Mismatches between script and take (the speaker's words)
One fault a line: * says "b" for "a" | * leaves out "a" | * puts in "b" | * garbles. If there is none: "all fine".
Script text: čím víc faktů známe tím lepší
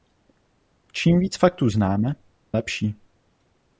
* leaves out "tím"